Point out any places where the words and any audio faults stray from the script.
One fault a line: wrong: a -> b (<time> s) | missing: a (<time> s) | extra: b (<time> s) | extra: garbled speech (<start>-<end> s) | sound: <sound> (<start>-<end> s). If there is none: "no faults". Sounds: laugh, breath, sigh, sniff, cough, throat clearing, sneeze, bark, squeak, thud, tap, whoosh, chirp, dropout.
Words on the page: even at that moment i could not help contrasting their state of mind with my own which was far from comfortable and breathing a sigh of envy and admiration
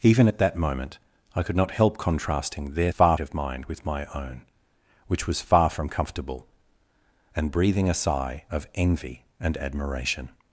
wrong: state -> far (2.9 s)